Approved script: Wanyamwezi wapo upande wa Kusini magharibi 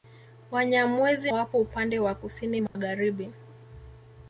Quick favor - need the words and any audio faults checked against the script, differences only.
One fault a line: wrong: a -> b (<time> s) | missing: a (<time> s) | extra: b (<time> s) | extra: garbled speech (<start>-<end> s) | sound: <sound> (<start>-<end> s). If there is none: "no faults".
sound: dropout (2.7-2.8 s)